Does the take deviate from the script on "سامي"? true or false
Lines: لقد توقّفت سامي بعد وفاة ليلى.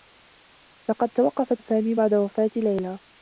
false